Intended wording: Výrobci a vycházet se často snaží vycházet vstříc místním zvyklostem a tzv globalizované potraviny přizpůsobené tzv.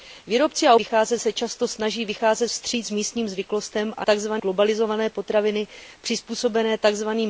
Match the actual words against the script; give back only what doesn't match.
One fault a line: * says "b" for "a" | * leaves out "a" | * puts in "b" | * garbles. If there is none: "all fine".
all fine